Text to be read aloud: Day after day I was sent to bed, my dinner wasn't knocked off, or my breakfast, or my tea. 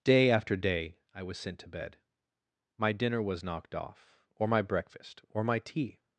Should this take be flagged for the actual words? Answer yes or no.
yes